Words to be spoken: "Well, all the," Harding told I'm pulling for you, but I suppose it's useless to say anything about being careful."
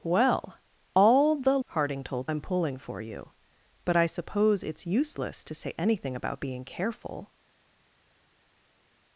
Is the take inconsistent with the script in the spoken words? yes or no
no